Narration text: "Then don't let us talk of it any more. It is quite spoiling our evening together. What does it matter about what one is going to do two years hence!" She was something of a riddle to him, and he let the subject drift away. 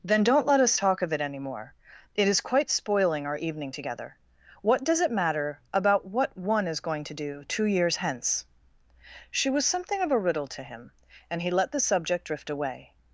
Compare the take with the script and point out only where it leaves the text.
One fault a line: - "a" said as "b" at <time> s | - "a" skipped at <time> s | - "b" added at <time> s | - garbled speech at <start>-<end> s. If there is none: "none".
none